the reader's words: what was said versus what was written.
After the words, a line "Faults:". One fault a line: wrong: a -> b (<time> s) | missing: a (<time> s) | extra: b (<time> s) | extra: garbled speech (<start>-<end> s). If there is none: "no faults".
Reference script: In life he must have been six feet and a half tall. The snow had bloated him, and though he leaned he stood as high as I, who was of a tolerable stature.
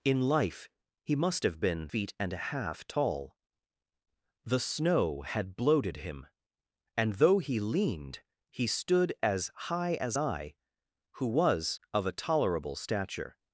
In life he must have been feet and a half tall. The snow had bloated him, and though he leaned he stood as high as I, who was of a tolerable stature.
Faults:
missing: six (1.9 s)